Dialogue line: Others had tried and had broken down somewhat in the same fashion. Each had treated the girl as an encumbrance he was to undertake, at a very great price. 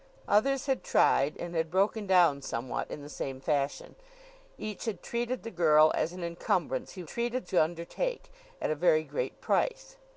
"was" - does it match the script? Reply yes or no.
no